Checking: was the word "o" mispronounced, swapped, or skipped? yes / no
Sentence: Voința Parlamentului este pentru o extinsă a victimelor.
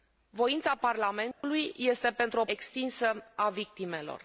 no